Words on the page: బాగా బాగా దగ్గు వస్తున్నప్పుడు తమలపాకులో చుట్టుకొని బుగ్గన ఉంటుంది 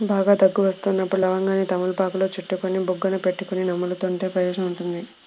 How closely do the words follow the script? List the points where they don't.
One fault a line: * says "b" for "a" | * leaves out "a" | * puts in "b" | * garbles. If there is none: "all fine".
* leaves out "బాగా"
* puts in "లవంగాన్ని"
* puts in "పెట్టుకొని నములుతుంటే ప్రయోజనం"